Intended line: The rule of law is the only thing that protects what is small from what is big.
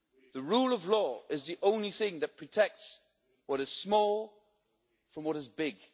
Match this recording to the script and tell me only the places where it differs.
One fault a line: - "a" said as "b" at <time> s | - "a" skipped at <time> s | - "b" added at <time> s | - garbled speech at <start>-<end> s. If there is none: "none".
none